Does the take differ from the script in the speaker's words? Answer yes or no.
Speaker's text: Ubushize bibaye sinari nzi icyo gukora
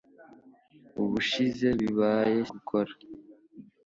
yes